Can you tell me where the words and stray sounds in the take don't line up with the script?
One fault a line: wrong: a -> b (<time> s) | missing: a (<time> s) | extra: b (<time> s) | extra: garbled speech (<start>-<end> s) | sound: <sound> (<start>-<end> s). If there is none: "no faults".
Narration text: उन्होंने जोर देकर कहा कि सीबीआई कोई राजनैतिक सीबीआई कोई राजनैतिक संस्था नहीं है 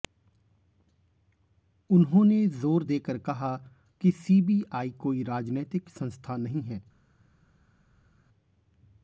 missing: सीबीआई कोई राजनैतिक (5.9 s)